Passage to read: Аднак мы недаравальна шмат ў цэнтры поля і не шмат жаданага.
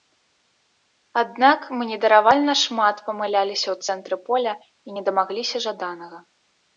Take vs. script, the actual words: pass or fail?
fail